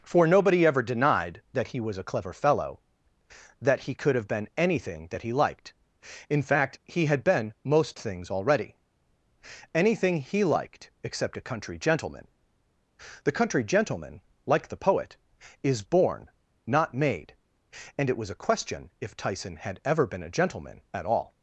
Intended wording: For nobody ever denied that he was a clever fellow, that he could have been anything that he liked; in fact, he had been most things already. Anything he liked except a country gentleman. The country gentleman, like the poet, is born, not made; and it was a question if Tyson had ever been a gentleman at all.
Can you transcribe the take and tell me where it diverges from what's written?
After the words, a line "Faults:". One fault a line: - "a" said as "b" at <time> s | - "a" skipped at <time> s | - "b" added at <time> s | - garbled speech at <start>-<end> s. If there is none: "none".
For nobody ever denied that he was a clever fellow, that he could have been anything that he liked; in fact, he had been most things already. Anything he liked except a country gentleman. The country gentleman, like the poet, is born, not made; and it was a question if Tyson had ever been a gentleman at all.
Faults:
none